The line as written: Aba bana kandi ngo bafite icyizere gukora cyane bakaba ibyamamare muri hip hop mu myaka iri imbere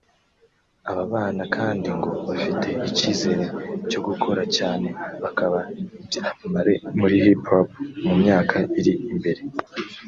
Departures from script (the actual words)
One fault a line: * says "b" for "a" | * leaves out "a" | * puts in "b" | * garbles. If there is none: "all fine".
* puts in "cyo"